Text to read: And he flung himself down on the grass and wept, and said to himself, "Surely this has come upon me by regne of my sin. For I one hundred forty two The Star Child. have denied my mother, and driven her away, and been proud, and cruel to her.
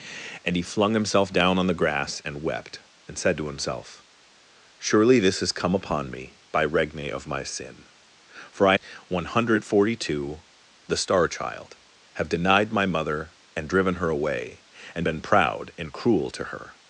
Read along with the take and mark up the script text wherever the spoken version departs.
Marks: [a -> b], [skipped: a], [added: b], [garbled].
And he flung himself down on the grass and wept, and said to himself, "Surely this has come upon me by regne of my sin. For I one hundred forty two The Star Child. have denied my mother, and driven her away, and been proud, and cruel to her.